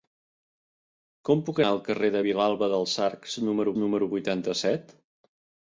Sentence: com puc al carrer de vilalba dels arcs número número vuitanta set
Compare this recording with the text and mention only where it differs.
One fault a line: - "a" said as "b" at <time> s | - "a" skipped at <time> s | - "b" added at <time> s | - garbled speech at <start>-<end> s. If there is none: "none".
none